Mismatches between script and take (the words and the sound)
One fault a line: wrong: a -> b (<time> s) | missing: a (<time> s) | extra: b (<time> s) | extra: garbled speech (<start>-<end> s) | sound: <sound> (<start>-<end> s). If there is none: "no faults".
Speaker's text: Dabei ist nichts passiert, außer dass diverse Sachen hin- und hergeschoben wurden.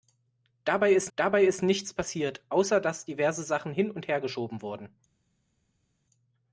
extra: dabei ist (1.1 s)